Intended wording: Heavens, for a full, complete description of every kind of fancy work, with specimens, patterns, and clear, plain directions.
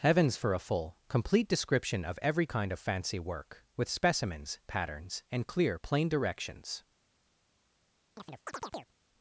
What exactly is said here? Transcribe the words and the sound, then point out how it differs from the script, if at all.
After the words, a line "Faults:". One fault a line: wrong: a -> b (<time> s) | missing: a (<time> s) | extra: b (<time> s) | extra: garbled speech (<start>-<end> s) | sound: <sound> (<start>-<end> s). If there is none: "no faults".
Heavens, for a full, complete description of every kind of fancy work, with specimens, patterns, and clear, plain directions.
Faults:
sound: chirp (8.2-8.9 s)